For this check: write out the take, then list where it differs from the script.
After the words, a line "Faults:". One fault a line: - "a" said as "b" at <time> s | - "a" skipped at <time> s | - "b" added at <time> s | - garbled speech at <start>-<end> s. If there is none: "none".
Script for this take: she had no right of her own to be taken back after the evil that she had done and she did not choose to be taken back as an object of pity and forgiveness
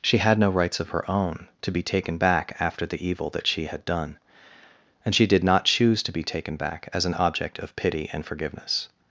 she had no rights of her own to be taken back after the evil that she had done and she did not choose to be taken back as an object of pity and forgiveness
Faults:
- "right" said as "rights" at 0.5 s